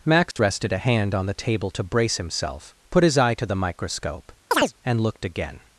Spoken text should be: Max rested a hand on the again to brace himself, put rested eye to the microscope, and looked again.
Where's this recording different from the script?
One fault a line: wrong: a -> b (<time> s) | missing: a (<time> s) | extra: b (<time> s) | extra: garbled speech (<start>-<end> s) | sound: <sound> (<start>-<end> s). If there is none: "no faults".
sound: dropout (0.3-0.4 s)
wrong: again -> table (1.3 s)
wrong: rested -> his (3.0 s)
sound: chirp (4.5-4.7 s)